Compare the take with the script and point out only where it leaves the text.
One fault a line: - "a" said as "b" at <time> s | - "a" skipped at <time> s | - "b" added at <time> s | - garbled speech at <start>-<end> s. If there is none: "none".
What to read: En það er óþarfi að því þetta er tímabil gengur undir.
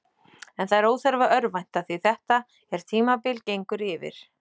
- "örvænta" added at 1.4 s
- "undir" said as "yfir" at 3.9 s